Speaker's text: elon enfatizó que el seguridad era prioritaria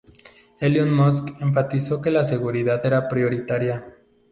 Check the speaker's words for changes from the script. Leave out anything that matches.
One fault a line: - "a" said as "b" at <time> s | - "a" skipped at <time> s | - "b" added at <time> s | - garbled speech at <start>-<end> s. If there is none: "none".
- "musk" added at 0.9 s
- "el" said as "la" at 2.1 s